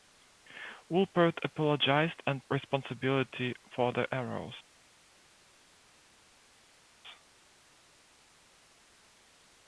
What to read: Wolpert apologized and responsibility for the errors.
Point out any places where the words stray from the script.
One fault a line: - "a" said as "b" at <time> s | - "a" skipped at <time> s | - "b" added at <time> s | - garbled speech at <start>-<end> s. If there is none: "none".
none